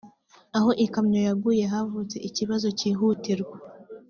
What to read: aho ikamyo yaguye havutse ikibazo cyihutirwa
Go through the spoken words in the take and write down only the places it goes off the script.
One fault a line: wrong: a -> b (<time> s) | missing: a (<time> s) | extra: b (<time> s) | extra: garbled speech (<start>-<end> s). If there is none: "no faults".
no faults